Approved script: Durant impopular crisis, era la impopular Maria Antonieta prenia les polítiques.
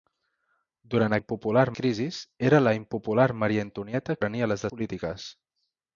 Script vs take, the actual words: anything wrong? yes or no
no